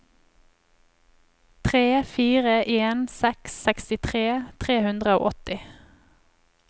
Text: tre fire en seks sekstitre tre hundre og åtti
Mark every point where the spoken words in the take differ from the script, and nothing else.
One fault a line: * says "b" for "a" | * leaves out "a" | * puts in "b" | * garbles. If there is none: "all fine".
all fine